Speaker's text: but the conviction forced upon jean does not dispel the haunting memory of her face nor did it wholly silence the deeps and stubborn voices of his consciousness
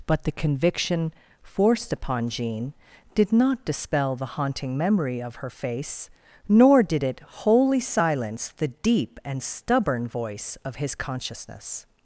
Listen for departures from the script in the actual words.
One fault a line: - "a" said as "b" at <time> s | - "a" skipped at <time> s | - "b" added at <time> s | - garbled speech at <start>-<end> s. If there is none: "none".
- "does" said as "did" at 3.1 s
- "deeps" said as "deep" at 8.7 s
- "voices" said as "voice" at 10.1 s